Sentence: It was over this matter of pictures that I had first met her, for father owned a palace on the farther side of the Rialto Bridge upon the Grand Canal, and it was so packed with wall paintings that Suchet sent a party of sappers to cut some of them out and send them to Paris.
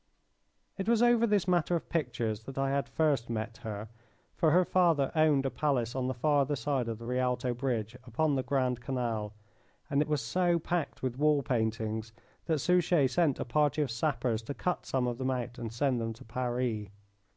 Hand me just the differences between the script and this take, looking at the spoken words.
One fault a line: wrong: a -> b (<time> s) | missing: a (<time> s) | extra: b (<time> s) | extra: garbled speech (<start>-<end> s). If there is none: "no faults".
extra: her (4.5 s)